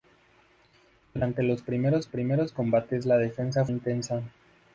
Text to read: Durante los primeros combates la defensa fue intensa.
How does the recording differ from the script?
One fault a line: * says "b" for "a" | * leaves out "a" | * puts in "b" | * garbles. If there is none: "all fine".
* puts in "primeros"
* leaves out "fue"